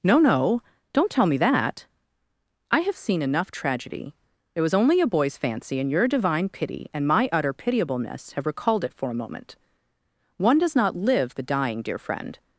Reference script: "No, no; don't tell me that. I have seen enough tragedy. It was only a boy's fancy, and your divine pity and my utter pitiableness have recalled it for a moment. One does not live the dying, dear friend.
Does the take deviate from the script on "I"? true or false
false